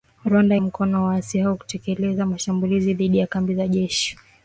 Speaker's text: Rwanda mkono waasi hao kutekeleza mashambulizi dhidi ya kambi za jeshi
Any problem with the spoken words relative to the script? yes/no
no